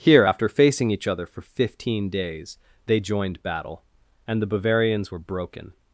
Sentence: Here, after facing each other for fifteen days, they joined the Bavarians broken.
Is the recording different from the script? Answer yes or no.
yes